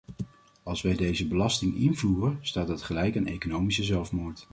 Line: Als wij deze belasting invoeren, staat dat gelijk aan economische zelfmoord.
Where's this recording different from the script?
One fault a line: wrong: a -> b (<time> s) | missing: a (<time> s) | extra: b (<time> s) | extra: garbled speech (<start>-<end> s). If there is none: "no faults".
no faults